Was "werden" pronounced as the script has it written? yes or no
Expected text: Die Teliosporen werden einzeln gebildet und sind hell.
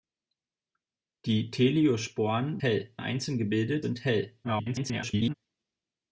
no